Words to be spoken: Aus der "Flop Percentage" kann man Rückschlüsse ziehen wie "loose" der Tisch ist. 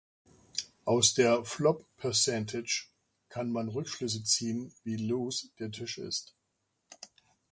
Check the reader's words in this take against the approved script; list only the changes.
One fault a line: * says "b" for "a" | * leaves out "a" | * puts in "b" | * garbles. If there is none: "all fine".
all fine